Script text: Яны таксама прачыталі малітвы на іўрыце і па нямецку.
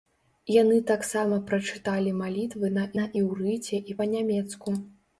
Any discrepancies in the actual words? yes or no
yes